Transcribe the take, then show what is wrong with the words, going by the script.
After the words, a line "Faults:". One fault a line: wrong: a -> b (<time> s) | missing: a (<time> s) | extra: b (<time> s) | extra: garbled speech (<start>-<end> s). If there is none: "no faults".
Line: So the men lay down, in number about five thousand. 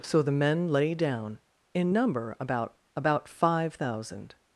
So the men lay down, in number about about five thousand.
Faults:
extra: about (3.0 s)